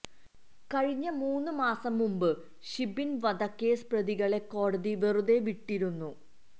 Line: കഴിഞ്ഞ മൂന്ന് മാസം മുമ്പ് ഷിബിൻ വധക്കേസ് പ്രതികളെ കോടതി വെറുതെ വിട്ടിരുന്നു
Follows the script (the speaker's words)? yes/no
yes